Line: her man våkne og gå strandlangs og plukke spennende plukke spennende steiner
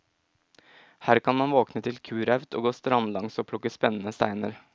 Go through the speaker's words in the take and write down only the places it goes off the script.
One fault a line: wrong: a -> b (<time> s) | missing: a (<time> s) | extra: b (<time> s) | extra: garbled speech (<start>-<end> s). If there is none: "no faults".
extra: kan (1.2 s)
extra: til kuraut (1.8 s)
missing: plukke spennende (4.1 s)